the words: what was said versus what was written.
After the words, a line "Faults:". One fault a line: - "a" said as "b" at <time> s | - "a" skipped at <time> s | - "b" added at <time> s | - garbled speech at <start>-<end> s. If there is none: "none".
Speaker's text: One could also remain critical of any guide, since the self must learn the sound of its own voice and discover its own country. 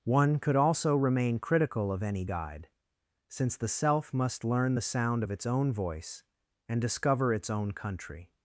One could also remain critical of any guide, since the self must learn the sound of its own voice and discover its own country.
Faults:
none